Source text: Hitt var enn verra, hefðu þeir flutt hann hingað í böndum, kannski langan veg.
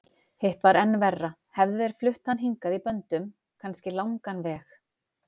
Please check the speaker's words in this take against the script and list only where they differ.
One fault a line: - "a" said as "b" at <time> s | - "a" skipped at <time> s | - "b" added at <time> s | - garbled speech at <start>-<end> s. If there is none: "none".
none